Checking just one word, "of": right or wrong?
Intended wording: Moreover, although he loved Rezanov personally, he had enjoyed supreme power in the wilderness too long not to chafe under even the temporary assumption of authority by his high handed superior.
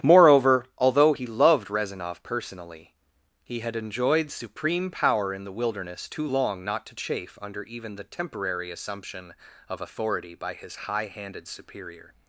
right